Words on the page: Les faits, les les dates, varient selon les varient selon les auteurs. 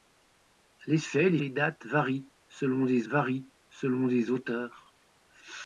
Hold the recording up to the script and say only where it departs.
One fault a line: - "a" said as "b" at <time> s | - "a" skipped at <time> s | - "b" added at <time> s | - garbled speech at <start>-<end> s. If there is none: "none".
none